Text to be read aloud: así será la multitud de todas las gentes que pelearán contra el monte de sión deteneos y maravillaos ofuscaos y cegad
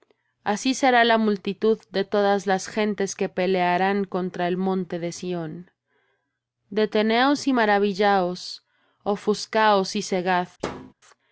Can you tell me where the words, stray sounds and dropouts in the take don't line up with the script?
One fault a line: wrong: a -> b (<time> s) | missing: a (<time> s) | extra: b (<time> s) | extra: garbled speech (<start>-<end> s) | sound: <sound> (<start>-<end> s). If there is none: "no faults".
sound: thud (10.6-10.9 s)